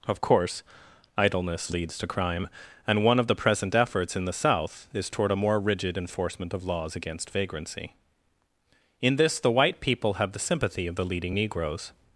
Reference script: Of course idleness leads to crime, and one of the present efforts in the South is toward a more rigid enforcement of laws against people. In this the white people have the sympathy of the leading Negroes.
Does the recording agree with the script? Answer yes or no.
no